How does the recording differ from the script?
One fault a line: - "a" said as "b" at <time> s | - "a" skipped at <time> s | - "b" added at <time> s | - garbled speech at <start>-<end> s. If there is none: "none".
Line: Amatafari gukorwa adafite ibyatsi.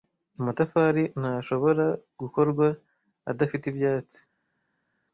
- "ntashobora" added at 1.2 s